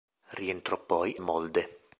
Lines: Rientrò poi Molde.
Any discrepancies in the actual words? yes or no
no